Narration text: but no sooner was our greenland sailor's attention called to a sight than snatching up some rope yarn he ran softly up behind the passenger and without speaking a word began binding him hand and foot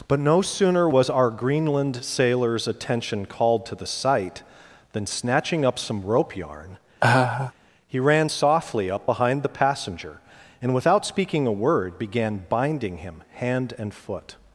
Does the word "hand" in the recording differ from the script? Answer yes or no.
no